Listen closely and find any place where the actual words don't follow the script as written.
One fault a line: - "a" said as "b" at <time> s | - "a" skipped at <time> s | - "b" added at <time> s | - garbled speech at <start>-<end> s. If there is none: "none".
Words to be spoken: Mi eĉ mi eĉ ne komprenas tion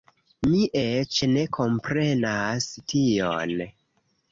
- "mi eĉ" skipped at 1.2 s